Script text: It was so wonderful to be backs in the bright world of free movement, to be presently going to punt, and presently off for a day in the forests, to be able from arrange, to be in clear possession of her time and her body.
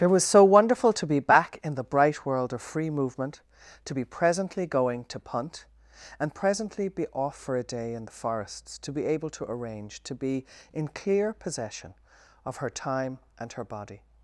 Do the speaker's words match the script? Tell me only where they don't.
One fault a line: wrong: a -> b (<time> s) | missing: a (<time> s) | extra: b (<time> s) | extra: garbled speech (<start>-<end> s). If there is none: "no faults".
wrong: backs -> back (1.2 s)
extra: be (6.9 s)
wrong: from -> to (9.3 s)